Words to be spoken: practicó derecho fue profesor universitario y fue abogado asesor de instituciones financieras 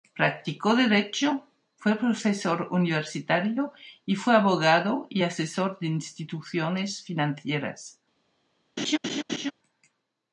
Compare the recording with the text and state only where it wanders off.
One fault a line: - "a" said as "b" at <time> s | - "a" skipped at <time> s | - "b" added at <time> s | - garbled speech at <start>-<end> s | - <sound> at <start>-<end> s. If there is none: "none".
- "y" added at 5.1 s
- laugh at 8.8-9.5 s